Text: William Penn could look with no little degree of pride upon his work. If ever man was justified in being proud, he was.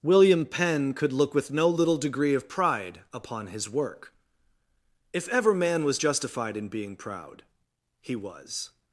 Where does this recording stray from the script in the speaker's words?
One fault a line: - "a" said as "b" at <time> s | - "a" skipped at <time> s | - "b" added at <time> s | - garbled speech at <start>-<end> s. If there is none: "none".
none